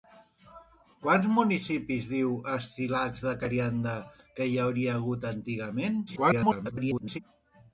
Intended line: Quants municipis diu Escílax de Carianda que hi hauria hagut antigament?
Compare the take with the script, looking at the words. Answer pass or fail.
fail